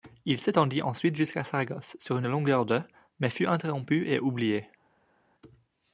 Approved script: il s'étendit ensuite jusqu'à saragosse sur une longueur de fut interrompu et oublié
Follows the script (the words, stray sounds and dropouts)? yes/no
no